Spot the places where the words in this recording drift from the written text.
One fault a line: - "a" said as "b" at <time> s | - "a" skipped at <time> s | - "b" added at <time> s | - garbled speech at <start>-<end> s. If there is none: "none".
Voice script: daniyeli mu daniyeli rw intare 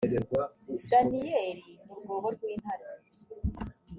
- "daniyeli" said as "rwobo" at 2.0 s